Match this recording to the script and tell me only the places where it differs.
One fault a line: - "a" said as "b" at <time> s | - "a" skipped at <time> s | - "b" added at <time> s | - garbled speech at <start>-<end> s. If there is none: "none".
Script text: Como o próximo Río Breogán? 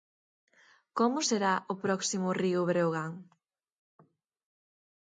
- "será" added at 1.3 s